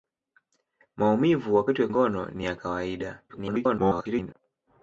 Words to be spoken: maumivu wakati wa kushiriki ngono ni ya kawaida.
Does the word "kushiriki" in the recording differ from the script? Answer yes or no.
yes